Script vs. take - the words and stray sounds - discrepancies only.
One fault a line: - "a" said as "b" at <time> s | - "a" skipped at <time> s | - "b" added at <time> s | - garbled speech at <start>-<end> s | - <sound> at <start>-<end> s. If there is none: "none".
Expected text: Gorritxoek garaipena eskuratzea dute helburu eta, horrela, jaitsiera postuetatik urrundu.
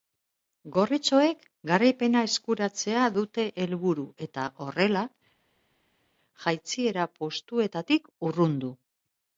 none